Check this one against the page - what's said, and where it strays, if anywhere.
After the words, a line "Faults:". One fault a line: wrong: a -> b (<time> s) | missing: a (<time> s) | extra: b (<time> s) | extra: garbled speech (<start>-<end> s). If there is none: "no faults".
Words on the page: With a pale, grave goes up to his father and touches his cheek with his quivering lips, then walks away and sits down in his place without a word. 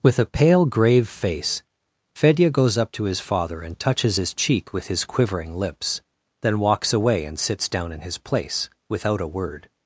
With a pale, grave face Fedya goes up to his father and touches his cheek with his quivering lips, then walks away and sits down in his place without a word.
Faults:
extra: face Fedya (1.1 s)